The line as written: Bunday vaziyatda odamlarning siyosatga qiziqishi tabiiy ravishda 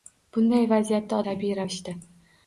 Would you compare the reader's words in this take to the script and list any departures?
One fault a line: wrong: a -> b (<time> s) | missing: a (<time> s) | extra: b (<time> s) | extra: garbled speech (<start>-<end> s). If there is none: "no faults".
missing: odamlarning siyosatga qiziqishi (1.2 s)